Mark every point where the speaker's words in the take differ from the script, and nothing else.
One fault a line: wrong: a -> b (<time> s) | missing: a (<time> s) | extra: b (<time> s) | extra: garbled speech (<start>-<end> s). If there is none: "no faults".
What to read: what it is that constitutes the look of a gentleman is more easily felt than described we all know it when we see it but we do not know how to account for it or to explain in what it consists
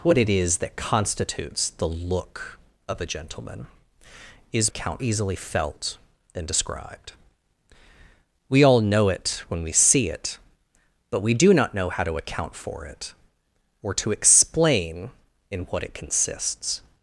wrong: more -> account (4.7 s)